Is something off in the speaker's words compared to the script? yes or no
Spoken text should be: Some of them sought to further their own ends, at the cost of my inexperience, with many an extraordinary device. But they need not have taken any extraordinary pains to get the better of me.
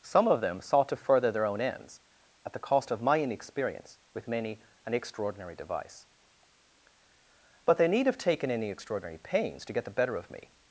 yes